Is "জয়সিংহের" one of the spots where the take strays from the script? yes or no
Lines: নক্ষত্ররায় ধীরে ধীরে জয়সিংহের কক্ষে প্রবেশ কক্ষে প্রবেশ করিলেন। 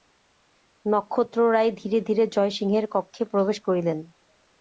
no